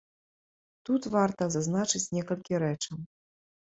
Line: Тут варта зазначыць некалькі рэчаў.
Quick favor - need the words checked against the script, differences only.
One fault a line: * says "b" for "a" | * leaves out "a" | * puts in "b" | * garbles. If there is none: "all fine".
all fine